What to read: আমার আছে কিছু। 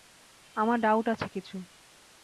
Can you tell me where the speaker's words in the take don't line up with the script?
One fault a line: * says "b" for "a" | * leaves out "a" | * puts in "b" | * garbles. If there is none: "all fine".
* puts in "ডাউট"